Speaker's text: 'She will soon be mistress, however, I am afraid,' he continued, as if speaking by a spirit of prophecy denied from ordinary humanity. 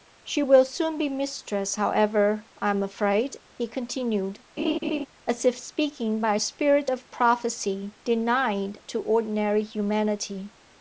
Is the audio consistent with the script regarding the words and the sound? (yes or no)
no